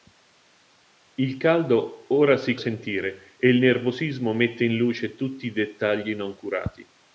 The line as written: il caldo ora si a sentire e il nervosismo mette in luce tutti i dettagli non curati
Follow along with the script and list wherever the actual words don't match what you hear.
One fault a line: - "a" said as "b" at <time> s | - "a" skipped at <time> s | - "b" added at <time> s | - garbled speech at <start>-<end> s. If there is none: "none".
none